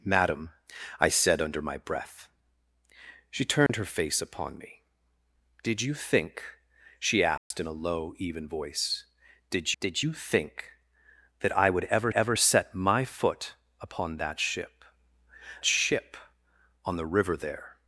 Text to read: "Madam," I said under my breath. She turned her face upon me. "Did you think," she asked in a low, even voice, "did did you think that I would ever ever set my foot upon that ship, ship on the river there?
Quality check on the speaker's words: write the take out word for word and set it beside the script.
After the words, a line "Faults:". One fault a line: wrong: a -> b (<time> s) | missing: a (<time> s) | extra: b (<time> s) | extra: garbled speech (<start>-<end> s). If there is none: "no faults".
"Madam," I said under my breath. She turned her face upon me. "Did you think," she asked in a low, even voice, "did did you think that I would ever ever set my foot upon that ship, ship on the river there?
Faults:
no faults